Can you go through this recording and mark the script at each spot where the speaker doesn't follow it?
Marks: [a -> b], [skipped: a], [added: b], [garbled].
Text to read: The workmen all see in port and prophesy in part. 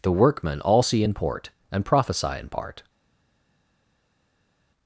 The workmen all see in port and prophesy in part.